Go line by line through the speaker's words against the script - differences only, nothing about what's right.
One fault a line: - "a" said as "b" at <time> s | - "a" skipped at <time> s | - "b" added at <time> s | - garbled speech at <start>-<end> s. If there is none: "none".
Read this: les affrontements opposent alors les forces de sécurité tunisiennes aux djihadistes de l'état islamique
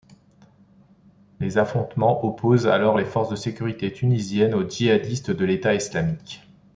none